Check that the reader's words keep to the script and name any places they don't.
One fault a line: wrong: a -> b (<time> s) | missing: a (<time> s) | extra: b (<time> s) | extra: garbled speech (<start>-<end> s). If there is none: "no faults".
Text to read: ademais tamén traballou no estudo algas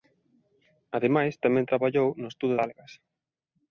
no faults